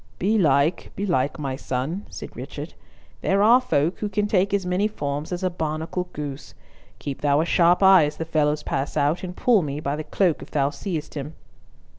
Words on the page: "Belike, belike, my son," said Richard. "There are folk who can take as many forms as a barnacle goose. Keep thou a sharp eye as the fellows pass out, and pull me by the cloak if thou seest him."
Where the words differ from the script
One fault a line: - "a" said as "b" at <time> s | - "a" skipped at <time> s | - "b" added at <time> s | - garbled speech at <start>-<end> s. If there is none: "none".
none